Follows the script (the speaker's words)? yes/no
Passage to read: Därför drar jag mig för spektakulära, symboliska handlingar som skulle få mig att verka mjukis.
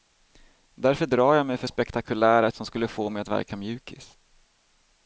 no